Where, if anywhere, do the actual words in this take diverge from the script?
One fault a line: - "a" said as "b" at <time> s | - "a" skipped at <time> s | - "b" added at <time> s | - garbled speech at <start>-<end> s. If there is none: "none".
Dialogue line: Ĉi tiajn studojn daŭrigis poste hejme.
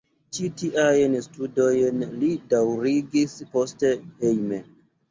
- "li" added at 2.2 s